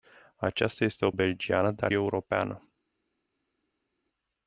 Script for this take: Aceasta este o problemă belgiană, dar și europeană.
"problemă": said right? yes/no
no